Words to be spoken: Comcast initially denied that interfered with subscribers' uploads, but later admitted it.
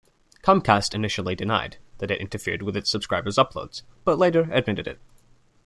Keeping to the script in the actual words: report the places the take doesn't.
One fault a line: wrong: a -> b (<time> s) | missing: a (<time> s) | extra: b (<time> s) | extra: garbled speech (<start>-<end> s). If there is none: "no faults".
extra: it (2.1 s)
extra: its (2.8 s)